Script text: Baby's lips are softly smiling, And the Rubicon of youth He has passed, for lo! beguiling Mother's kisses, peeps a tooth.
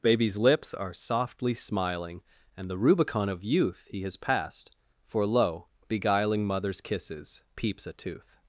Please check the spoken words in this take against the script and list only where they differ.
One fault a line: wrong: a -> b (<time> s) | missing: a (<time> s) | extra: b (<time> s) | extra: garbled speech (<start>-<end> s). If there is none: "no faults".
no faults